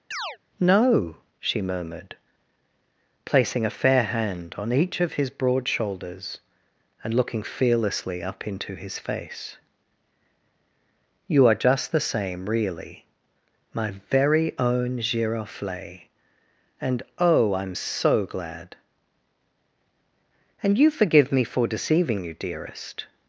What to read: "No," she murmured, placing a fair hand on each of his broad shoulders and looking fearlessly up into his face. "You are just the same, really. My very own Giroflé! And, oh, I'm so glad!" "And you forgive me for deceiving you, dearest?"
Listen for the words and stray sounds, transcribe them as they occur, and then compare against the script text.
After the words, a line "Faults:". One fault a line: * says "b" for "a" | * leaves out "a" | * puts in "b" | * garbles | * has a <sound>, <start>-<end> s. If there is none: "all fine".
"No," she murmured, placing a fair hand on each of his broad shoulders and looking fearlessly up into his face. "You are just the same, really. My very own Giroflé! And, oh, I'm so glad!" "And you forgive me for deceiving you, dearest?"
Faults:
* has a chirp, 0.1-0.4 s